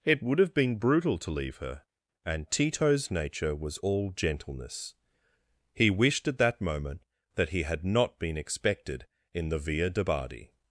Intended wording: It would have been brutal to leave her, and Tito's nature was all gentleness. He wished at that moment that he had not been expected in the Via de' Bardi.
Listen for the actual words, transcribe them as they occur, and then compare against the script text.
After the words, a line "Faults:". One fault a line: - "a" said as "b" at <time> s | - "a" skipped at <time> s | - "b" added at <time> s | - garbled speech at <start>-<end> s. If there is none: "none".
It would have been brutal to leave her, and Tito's nature was all gentleness. He wished at that moment that he had not been expected in the Via de' Bardi.
Faults:
none